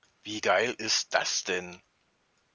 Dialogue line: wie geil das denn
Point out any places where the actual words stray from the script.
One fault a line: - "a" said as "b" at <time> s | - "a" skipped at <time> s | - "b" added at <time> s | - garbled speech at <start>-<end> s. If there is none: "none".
- "ist" added at 0.8 s